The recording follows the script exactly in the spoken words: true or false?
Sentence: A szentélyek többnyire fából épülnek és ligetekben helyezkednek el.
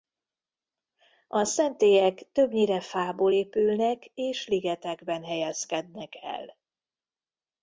true